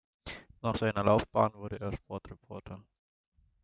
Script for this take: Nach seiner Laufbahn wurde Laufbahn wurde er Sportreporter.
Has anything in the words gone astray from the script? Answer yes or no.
yes